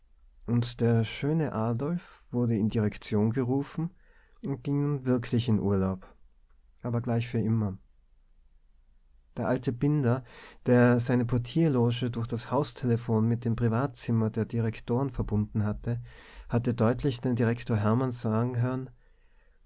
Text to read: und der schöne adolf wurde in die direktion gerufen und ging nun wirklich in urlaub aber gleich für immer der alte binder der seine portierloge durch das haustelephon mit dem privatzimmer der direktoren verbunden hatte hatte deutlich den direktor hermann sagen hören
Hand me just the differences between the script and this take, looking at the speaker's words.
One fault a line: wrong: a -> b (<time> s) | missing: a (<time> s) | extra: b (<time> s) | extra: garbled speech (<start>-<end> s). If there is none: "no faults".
missing: die (2.7 s)